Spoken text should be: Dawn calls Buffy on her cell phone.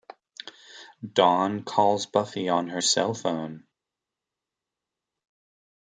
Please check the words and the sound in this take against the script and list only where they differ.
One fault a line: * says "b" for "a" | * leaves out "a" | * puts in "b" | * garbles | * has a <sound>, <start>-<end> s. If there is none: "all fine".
all fine